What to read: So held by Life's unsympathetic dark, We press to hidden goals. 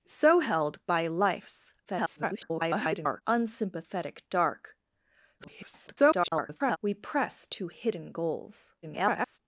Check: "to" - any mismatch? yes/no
no